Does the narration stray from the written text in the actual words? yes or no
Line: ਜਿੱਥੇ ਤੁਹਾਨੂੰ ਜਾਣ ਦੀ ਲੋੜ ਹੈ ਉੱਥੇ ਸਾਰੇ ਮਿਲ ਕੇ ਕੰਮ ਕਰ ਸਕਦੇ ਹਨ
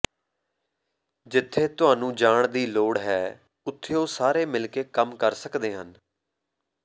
yes